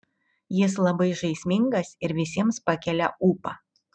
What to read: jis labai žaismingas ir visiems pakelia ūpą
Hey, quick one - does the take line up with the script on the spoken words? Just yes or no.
yes